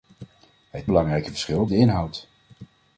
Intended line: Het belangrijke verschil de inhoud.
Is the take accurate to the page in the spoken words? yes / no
yes